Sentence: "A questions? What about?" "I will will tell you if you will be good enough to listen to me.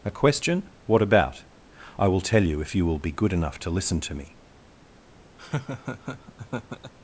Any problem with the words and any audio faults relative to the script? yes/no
yes